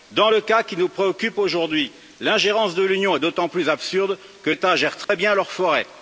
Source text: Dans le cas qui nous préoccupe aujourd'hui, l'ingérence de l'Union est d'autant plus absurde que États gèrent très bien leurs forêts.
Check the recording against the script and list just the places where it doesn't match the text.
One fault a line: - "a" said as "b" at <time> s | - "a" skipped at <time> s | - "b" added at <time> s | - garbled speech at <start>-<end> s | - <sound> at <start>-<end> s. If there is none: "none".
- dropout at 5.0-5.1 s